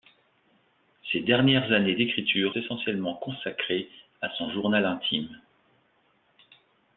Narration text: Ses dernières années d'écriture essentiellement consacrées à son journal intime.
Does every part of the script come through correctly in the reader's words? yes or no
yes